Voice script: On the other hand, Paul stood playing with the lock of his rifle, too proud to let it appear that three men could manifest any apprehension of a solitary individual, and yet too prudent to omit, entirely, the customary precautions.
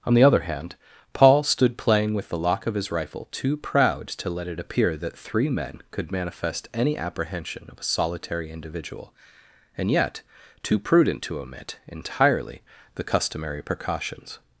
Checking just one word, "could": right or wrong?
right